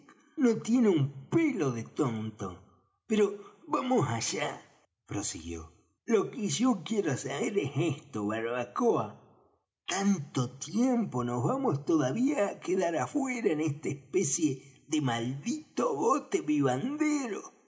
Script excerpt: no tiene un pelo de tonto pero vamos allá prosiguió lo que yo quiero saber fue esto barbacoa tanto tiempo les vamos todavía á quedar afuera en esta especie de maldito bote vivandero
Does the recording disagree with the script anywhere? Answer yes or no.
yes